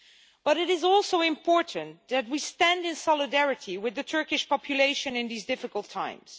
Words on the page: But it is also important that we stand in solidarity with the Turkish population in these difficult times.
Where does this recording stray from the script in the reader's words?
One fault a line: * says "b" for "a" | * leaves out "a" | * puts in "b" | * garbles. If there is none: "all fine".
all fine